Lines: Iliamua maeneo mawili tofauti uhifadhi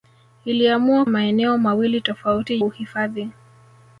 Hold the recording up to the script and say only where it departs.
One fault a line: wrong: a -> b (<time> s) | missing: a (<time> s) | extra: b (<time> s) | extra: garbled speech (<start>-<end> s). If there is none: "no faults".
no faults